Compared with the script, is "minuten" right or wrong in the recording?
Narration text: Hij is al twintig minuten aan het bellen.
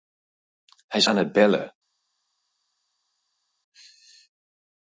wrong